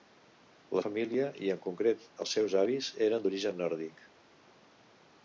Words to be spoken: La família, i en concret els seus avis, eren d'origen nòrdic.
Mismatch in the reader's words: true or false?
false